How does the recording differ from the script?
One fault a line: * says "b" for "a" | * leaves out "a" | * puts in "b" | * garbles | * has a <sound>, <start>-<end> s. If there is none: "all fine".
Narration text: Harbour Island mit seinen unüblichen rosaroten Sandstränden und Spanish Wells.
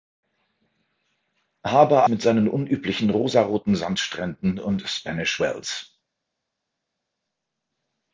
* leaves out "Island"